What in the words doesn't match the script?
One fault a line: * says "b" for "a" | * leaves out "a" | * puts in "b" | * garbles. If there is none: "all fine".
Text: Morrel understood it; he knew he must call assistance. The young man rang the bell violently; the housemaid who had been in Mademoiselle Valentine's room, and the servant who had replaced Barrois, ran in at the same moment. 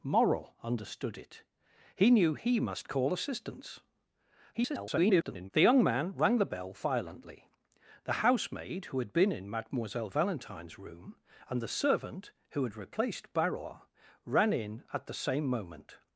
* garbles